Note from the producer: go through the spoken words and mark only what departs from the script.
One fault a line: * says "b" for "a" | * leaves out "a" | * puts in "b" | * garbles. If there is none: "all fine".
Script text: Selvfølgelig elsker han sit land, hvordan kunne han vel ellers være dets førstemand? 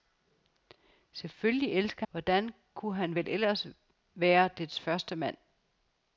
* leaves out "han sit land"